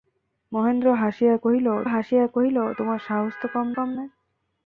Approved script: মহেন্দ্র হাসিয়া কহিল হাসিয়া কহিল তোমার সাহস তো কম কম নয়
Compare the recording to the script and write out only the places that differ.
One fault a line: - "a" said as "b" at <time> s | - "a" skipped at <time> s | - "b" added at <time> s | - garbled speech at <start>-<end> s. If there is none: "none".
none